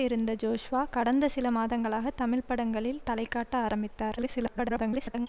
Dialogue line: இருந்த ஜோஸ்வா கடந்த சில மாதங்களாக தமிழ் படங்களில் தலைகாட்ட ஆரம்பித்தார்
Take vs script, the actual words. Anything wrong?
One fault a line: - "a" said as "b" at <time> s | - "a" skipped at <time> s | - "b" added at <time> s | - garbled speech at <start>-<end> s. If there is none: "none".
- garbled speech at 4.2-5.3 s